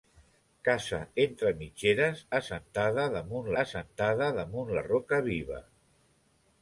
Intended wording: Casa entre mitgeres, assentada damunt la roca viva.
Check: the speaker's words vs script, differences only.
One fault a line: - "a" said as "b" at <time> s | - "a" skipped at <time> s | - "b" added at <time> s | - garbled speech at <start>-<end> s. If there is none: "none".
- "assentada damunt" added at 3.6 s